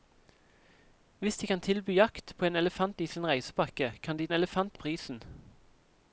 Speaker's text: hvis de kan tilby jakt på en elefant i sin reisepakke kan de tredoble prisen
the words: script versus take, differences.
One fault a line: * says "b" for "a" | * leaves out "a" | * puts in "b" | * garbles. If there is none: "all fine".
* says "elefant" for "tredoble"